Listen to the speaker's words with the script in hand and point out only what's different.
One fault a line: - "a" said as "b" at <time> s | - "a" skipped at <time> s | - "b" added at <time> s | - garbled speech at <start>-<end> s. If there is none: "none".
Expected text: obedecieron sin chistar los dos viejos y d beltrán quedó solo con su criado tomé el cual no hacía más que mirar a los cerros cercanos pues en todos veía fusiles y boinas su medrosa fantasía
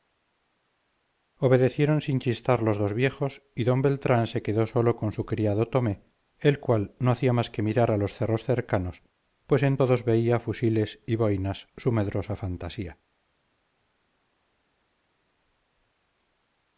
- "se" added at 4.2 s